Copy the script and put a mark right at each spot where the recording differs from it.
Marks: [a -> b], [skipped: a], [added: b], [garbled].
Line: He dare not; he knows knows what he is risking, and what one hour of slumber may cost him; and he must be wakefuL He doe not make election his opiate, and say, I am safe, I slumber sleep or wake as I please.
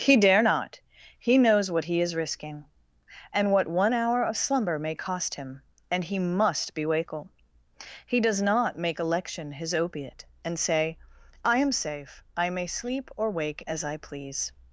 He dare not; he knows [skipped: knows] what he is risking, and what one hour of slumber may cost him; and he must be wakefuL He [doe -> does] not make election his opiate, and say, I am safe, I [slumber -> may] sleep or wake as I please.